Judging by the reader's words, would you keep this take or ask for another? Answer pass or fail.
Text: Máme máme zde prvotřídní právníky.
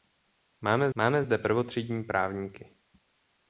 pass